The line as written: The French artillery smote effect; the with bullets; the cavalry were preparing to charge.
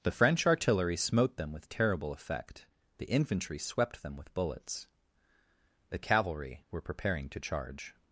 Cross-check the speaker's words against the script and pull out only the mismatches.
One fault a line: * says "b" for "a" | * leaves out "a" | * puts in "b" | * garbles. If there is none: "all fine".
* puts in "them with terrible"
* puts in "infantry swept them"